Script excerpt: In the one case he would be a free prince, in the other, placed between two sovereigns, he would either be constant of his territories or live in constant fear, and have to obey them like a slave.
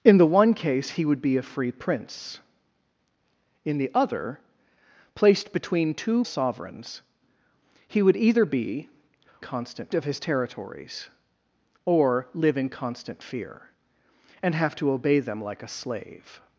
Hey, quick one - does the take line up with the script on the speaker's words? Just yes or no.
yes